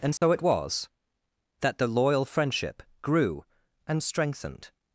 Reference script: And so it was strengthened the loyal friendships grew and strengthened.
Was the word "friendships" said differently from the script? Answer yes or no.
yes